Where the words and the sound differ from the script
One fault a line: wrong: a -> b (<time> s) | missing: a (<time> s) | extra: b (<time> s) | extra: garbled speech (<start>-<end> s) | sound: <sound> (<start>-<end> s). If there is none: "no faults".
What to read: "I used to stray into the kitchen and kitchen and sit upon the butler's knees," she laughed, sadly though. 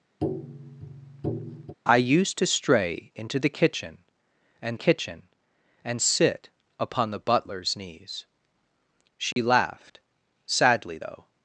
sound: tap (0.2-1.7 s)
sound: dropout (9.3-9.4 s)